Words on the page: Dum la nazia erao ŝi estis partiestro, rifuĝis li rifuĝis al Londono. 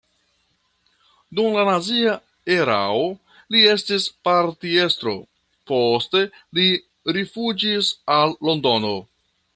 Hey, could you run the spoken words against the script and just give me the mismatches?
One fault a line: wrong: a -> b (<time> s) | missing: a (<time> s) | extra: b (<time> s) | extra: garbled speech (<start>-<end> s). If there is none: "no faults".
wrong: ŝi -> li (3.6 s)
wrong: rifuĝis -> poste (5.7 s)